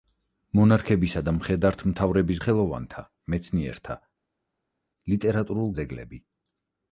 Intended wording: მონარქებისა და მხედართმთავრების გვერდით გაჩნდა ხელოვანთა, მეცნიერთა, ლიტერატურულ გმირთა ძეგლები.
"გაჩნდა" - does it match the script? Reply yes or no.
no